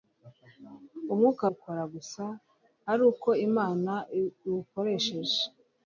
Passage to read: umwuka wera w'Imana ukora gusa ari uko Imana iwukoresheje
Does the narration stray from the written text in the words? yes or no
yes